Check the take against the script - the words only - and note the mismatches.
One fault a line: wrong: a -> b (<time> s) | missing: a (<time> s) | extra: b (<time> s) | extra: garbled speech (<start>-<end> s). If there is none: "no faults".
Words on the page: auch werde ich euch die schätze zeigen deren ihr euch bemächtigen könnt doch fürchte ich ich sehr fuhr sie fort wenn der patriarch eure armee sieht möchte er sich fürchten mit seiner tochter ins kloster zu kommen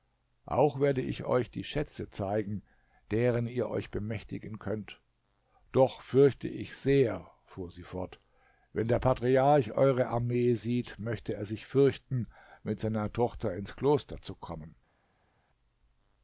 missing: ich (6.8 s)